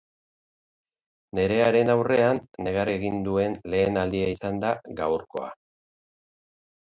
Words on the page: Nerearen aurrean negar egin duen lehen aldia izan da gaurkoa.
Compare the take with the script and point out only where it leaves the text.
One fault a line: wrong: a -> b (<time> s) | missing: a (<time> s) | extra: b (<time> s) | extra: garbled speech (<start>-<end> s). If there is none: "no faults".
no faults